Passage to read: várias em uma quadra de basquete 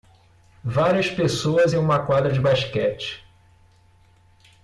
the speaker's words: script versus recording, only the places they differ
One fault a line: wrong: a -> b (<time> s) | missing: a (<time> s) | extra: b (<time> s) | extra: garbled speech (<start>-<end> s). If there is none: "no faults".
extra: pessoas (1.1 s)